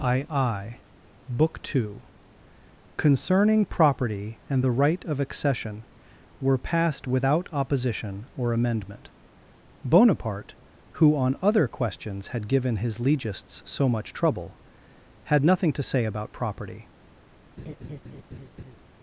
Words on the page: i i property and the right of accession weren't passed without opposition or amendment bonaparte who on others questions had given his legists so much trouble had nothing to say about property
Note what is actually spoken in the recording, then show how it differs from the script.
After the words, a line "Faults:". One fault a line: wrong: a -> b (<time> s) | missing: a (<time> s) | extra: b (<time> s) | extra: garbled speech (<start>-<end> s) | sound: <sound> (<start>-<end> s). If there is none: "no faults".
i i book two concerning property and the right of accession were passed without opposition or amendment bonaparte who on other questions had given his legists so much trouble had nothing to say about property
Faults:
extra: book two concerning (1.3 s)
wrong: weren't -> were (6.4 s)
wrong: others -> other (11.4 s)
sound: laugh (17.6-18.8 s)